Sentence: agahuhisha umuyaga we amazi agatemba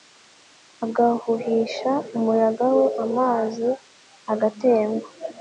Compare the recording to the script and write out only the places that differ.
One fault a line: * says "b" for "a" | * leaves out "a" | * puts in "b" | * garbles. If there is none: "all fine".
all fine